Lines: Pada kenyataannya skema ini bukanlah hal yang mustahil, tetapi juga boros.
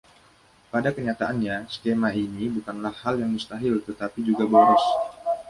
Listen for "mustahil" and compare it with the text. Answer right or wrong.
right